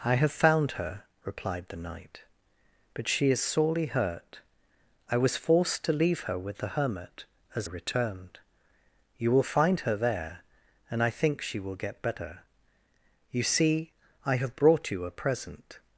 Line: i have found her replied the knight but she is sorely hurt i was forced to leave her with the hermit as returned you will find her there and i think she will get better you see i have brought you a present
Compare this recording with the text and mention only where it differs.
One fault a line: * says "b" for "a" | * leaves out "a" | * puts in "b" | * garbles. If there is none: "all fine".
all fine